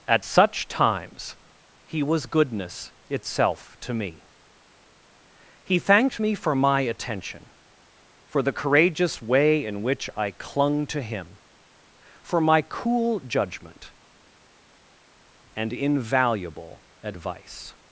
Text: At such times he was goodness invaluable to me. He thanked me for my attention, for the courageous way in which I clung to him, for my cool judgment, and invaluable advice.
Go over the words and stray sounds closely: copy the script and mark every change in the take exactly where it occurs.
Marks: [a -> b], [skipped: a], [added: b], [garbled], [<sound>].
At such times he was goodness [invaluable -> itself] to me. He thanked me for my attention, for the courageous way in which I clung to him, for my cool judgment, and invaluable advice.